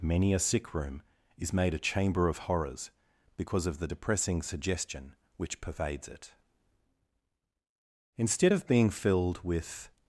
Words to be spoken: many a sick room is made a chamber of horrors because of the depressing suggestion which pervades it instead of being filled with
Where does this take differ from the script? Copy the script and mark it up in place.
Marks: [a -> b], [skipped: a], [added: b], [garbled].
many a sick room is made a chamber of horrors because of the depressing suggestion which pervades it instead of being filled with